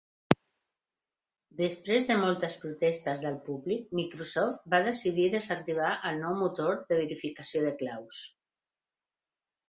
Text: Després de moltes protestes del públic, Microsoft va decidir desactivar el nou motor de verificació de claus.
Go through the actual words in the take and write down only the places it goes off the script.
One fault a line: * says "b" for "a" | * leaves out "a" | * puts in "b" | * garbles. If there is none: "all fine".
all fine